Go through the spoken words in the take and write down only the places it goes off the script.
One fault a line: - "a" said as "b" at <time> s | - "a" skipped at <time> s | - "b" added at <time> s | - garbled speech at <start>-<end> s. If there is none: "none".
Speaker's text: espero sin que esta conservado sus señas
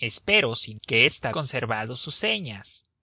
none